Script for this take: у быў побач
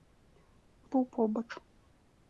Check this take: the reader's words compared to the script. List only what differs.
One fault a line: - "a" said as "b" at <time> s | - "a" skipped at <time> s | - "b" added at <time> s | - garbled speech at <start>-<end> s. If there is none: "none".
none